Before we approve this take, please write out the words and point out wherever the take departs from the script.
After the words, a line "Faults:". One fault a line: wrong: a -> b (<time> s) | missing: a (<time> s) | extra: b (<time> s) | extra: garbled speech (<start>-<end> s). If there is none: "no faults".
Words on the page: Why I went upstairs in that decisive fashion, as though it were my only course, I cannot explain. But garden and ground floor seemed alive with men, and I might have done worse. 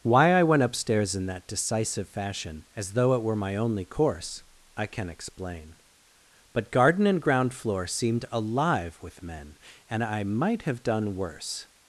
Why I went upstairs in that decisive fashion, as though it were my only course, I can explain. But garden and ground floor seemed alive with men, and I might have done worse.
Faults:
wrong: cannot -> can (4.9 s)